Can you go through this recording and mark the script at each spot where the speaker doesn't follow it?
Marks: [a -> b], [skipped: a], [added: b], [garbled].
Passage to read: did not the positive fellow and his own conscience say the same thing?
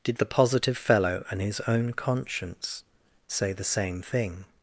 did [skipped: not] the positive fellow and his own conscience say the same thing?